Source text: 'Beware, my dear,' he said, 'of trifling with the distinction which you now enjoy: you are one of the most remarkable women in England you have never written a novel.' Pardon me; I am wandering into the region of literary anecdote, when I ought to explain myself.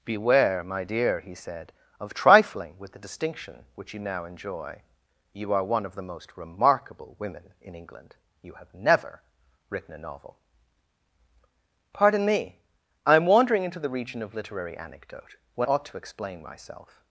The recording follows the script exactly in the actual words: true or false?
false